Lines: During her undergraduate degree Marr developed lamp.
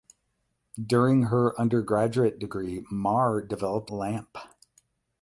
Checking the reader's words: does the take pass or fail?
pass